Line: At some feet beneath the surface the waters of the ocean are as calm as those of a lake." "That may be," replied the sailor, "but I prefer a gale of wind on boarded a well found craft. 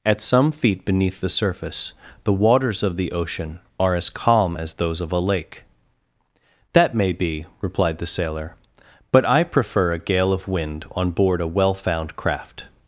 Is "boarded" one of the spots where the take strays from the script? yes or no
yes